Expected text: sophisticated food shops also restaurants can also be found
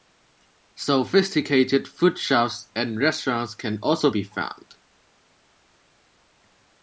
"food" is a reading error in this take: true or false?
false